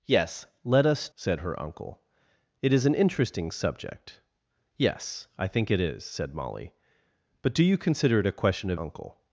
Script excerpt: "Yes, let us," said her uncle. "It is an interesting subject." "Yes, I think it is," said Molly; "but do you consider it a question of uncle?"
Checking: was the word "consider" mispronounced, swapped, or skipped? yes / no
no